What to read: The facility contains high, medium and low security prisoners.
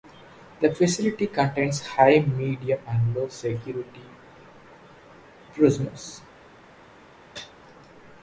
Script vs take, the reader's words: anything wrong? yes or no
no